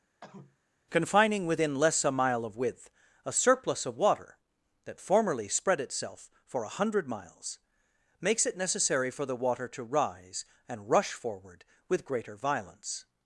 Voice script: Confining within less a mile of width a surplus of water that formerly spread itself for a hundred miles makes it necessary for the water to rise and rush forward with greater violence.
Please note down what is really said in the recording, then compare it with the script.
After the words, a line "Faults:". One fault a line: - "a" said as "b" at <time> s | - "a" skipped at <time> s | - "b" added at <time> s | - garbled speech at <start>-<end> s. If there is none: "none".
Confining within less a mile of width a surplus of water that formerly spread itself for a hundred miles makes it necessary for the water to rise and rush forward with greater violence.
Faults:
none